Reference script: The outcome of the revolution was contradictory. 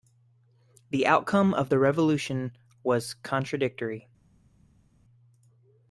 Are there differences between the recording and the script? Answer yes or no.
no